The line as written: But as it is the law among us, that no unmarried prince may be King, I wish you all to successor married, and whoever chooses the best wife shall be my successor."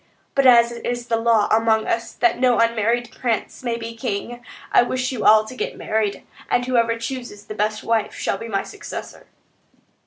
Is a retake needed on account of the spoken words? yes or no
yes